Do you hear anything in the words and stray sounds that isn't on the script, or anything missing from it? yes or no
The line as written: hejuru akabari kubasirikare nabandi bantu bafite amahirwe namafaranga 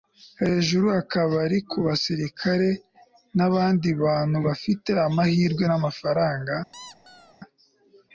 yes